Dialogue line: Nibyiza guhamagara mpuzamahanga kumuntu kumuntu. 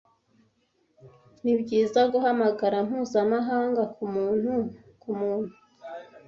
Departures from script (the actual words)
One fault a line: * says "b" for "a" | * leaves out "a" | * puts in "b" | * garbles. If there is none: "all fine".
all fine